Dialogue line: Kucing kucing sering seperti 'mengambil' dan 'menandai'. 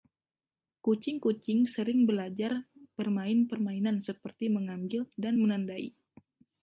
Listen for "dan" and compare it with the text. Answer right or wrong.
right